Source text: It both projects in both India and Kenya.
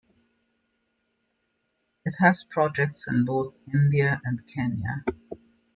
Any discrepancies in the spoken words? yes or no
yes